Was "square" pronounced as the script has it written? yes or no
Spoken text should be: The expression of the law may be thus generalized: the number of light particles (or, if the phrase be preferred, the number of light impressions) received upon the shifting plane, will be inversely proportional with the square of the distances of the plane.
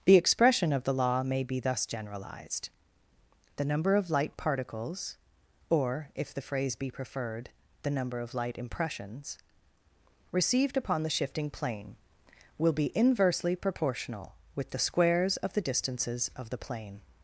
no